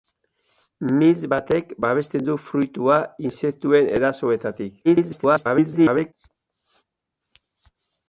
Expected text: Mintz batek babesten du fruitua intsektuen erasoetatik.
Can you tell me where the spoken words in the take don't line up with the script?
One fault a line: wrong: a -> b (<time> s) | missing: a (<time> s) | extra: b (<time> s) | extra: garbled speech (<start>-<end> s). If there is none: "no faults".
extra: garbled speech (4.8-6.1 s)